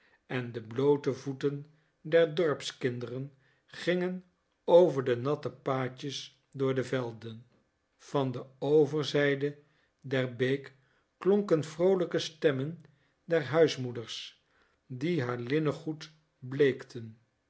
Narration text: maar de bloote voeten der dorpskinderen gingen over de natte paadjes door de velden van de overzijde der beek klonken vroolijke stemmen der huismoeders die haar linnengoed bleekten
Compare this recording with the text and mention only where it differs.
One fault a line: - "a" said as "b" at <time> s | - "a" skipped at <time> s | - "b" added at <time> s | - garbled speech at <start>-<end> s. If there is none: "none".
- "maar" said as "en" at 0.2 s